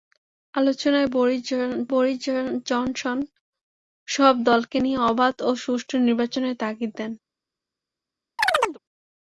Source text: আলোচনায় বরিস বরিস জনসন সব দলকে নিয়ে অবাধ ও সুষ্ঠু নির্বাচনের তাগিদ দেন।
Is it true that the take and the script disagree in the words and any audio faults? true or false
true